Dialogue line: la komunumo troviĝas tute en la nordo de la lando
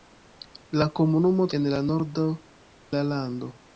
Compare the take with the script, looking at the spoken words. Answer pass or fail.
fail